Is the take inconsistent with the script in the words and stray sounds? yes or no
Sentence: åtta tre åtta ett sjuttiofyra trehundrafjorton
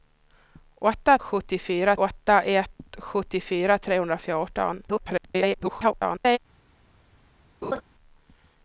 yes